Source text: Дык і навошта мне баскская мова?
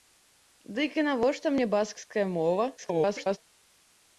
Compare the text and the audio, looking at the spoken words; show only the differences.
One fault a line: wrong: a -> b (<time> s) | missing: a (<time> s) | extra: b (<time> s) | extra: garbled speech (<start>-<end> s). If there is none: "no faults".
extra: garbled speech (2.8-3.4 s)